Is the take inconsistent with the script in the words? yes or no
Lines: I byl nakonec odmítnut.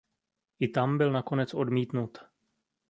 yes